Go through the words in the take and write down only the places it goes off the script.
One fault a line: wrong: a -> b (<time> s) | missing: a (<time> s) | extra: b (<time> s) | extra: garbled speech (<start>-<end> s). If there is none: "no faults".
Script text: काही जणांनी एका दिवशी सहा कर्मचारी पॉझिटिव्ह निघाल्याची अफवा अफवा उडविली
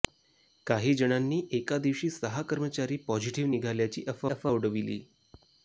no faults